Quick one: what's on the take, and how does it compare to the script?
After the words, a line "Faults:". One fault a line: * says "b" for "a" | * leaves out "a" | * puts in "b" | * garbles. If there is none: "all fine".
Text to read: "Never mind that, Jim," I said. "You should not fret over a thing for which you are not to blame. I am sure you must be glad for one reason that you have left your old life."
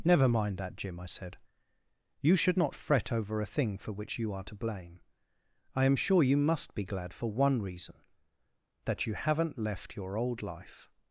"Never mind that, Jim," I said. "You should not fret over a thing for which you are to blame. I am sure you must be glad for one reason that you haven't left your old life."
Faults:
* leaves out "not"
* says "haven't" for "have"